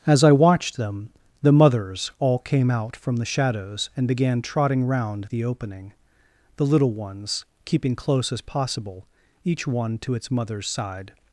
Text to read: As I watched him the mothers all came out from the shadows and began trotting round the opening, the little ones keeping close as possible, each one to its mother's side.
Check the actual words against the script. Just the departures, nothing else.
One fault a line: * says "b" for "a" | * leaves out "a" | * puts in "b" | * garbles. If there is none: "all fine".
* says "them" for "him"